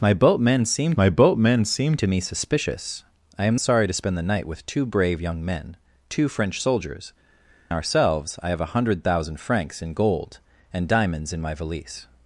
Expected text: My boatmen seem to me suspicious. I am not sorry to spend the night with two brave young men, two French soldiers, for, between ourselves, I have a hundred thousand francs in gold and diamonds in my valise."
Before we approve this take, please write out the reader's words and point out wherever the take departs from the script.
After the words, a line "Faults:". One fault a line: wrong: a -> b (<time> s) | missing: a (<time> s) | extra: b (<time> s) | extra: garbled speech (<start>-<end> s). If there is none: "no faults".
My boatmen seem my boatmen seem to me suspicious. I am sorry to spend the night with two brave young men, two French soldiers, ourselves, I have a hundred thousand francs in gold and diamonds in my valise."
Faults:
extra: my boatmen seem (1.0 s)
missing: not (3.6 s)
missing: for between (7.1 s)